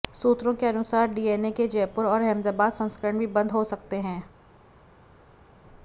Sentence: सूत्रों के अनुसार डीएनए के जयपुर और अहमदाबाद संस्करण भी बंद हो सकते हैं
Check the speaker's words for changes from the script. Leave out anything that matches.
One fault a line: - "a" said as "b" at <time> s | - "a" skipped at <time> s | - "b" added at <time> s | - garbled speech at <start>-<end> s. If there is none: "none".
none